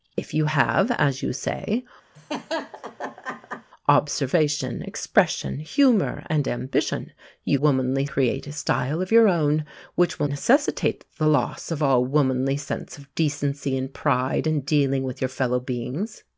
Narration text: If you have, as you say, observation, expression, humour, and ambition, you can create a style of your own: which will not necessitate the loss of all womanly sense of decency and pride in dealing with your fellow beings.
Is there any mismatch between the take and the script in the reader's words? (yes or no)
yes